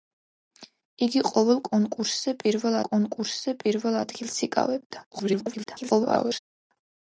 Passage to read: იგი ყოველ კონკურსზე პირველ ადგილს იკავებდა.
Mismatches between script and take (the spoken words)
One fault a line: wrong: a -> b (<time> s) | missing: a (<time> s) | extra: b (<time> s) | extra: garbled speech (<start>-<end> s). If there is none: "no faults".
extra: კონკურსზე პირველ (2.9 s)
extra: garbled speech (5.1-6.4 s)